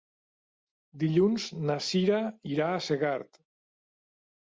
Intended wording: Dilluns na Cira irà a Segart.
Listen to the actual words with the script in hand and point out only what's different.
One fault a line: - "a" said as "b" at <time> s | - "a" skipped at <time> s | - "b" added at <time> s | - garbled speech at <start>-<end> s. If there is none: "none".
none